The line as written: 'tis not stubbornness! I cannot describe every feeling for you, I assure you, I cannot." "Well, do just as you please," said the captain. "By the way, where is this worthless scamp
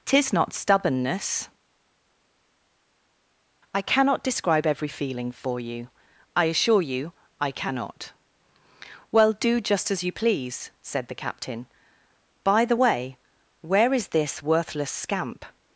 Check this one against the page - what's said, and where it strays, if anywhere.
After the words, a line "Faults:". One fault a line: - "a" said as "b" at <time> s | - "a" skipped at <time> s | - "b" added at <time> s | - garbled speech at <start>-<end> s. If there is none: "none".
'tis not stubbornness! I cannot describe every feeling for you, I assure you, I cannot." "Well, do just as you please," said the captain. "By the way, where is this worthless scamp
Faults:
none